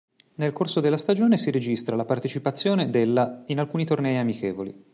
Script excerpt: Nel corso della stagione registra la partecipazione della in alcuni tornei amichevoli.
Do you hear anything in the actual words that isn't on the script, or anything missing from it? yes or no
yes